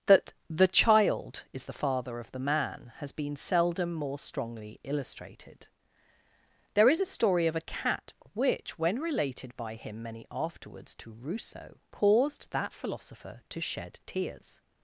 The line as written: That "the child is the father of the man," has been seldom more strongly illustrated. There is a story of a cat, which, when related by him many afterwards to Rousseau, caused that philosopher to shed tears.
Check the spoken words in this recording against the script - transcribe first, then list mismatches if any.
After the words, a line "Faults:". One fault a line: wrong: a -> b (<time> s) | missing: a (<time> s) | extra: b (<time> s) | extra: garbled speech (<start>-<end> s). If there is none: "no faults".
That "the child is the father of the man," has been seldom more strongly illustrated. There is a story of a cat, which, when related by him many afterwards to Rousseau, caused that philosopher to shed tears.
Faults:
no faults